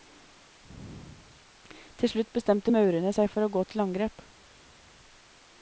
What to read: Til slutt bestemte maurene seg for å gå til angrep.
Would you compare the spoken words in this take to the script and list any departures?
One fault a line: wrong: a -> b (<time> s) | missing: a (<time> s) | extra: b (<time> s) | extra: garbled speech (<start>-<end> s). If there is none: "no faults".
no faults